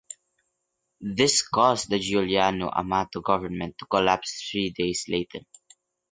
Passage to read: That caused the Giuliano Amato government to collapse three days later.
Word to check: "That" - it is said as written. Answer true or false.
false